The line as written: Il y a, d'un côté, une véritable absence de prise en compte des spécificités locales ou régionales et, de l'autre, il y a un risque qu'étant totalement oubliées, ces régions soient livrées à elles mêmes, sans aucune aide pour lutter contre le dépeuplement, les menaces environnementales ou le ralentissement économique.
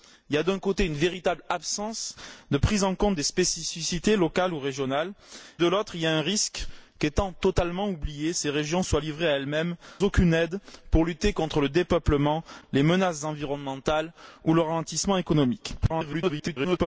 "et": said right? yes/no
no